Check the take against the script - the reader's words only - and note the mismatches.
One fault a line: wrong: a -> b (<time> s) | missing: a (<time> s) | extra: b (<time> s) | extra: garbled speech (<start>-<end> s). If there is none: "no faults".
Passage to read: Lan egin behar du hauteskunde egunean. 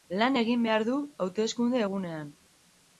no faults